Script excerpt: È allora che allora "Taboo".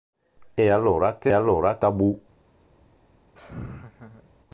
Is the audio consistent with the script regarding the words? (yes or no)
yes